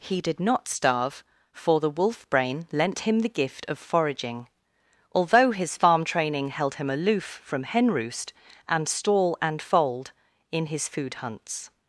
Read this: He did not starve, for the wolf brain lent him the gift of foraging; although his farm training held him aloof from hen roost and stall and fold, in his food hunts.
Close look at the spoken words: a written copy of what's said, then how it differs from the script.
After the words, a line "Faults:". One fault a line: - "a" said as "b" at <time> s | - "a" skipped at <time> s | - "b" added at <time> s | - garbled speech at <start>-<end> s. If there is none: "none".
He did not starve, for the wolf brain lent him the gift of foraging; although his farm training held him aloof from hen roost and stall and fold, in his food hunts.
Faults:
none